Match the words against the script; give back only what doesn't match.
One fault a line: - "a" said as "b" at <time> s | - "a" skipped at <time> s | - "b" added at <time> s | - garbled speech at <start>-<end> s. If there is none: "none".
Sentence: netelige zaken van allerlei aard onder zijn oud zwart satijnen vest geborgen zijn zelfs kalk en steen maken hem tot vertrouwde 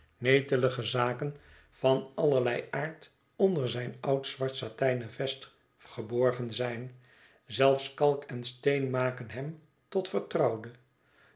none